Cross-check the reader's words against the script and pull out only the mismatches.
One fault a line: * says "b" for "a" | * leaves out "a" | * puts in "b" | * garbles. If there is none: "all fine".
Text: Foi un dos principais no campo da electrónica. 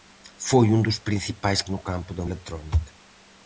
all fine